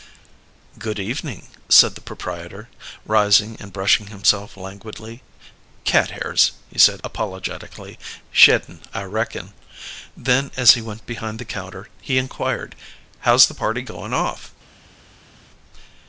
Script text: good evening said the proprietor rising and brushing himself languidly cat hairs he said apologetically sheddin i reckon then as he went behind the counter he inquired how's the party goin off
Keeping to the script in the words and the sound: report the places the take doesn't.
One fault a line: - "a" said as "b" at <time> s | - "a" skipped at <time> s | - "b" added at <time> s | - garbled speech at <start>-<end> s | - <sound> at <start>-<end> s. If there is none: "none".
none